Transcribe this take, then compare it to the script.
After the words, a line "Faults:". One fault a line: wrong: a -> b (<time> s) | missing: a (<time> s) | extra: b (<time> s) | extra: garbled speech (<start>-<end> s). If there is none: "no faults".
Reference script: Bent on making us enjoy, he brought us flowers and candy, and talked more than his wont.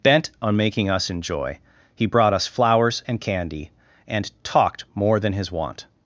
Bent on making us enjoy, he brought us flowers and candy, and talked more than his wont.
Faults:
no faults